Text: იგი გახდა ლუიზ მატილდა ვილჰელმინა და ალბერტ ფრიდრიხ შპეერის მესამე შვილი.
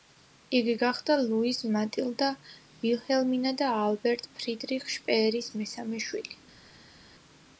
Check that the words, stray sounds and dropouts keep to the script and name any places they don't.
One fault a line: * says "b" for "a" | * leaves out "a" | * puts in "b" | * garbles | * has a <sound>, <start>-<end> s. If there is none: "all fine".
all fine